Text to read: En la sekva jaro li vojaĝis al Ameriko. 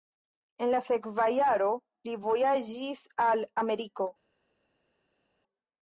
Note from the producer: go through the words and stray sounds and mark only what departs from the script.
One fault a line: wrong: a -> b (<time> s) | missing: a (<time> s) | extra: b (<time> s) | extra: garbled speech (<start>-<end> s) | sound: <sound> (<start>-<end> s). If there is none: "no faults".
no faults